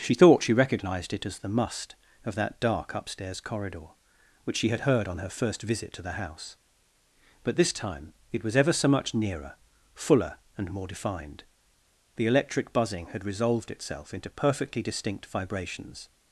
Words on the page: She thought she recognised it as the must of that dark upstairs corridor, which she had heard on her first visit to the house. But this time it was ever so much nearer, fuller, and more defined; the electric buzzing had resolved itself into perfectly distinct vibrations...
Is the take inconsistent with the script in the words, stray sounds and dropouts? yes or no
no